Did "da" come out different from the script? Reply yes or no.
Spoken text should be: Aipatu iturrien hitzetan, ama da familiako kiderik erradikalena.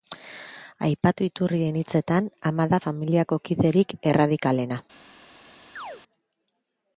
no